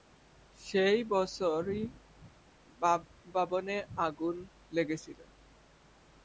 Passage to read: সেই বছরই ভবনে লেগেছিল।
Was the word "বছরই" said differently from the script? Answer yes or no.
no